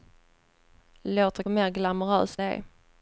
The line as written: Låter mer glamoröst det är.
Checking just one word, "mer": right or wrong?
right